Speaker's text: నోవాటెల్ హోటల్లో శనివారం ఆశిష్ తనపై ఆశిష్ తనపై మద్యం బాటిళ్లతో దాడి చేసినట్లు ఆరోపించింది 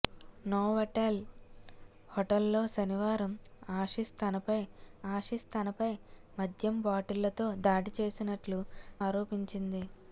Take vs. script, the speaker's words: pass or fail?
pass